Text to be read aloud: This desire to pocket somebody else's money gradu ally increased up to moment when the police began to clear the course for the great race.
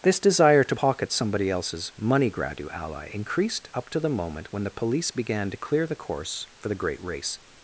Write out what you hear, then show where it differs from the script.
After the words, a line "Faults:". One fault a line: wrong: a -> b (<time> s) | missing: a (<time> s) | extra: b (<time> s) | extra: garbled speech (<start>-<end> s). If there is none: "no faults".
This desire to pocket somebody else's money gradu ally increased up to the moment when the police began to clear the course for the great race.
Faults:
extra: the (4.0 s)